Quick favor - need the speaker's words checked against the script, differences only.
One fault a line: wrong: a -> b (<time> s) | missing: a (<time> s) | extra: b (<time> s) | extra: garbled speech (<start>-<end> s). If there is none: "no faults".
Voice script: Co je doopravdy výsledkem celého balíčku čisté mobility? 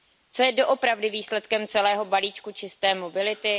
no faults